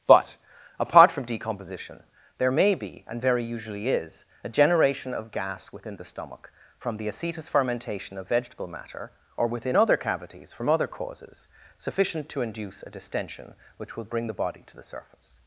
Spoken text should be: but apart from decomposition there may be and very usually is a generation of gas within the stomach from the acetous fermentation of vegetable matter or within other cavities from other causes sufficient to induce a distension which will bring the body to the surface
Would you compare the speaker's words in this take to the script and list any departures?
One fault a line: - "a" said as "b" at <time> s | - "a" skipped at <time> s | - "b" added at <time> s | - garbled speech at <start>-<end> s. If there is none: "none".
none